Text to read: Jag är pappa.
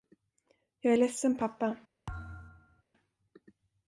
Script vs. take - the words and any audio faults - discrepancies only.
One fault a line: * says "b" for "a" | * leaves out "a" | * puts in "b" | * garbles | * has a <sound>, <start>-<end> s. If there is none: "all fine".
* puts in "ledsen"
* has a thud, 2.1-2.8 s